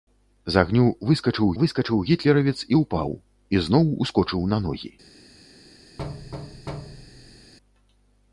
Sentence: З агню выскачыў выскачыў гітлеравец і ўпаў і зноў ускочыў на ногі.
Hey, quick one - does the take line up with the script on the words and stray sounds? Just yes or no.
no